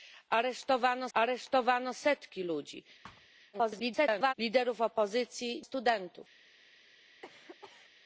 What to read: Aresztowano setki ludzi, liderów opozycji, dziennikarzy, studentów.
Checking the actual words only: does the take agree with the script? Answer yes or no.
no